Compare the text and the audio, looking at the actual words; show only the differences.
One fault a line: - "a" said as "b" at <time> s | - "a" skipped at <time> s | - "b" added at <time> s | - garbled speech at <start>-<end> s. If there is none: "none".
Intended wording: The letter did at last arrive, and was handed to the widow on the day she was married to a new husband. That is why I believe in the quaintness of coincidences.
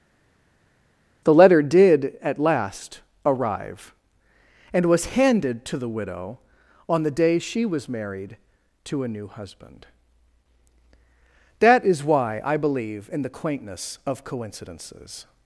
none